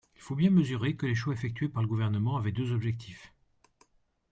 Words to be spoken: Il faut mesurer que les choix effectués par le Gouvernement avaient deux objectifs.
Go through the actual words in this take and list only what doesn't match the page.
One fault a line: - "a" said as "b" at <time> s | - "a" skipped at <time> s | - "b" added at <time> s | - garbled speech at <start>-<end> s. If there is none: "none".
- "bien" added at 0.3 s